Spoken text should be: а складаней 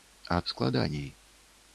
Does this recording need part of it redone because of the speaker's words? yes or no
no